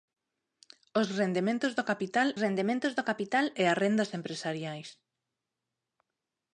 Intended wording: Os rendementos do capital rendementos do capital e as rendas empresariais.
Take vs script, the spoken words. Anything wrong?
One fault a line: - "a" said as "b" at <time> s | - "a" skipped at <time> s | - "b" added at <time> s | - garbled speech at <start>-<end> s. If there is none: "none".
none